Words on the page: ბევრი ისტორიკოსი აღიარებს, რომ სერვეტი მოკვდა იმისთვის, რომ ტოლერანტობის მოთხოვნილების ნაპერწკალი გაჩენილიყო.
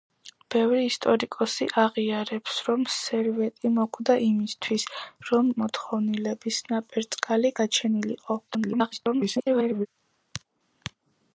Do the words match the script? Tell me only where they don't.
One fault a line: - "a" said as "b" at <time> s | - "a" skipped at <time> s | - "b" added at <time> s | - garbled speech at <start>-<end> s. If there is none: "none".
- "ტოლერანტობის" skipped at 5.5 s
- garbled speech at 8.5-9.9 s